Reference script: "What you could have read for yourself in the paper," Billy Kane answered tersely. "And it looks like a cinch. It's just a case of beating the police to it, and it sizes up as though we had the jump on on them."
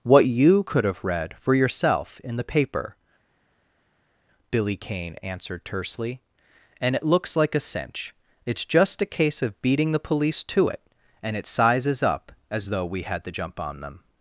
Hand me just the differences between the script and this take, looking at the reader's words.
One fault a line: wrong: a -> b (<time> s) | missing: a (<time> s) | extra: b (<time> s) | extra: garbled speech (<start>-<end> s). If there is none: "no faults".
missing: on (13.8 s)